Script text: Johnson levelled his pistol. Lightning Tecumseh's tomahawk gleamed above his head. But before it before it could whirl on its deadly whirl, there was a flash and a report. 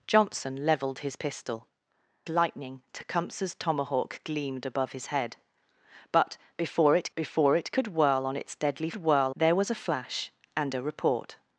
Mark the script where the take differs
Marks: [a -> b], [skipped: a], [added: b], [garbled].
Johnson levelled his pistol. Lightning Tecumseh's tomahawk gleamed above his head. But before it before it could whirl on its deadly whirl, there was a flash and a report.